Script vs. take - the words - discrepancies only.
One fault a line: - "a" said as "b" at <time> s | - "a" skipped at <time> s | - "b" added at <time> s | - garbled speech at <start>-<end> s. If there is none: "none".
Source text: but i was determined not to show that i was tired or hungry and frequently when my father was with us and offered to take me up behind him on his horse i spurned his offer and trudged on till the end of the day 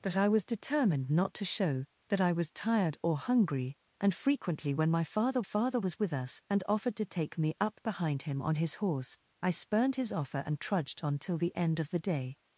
- "father" added at 5.4 s